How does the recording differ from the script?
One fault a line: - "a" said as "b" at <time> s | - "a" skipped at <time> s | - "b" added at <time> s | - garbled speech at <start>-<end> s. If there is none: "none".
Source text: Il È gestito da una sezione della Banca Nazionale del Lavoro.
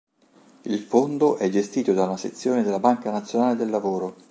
- "Fondo" added at 0.8 s